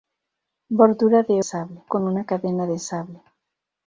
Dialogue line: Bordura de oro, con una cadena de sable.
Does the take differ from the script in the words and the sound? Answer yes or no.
yes